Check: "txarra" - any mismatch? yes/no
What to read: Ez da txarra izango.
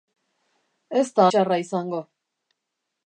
no